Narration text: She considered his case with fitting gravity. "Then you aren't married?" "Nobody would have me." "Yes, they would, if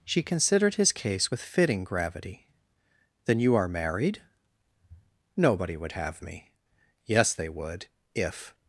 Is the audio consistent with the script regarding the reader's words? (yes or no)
no